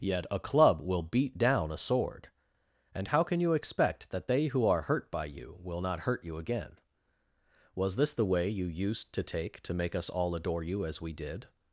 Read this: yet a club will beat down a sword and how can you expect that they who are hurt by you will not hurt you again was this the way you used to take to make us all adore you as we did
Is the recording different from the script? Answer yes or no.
no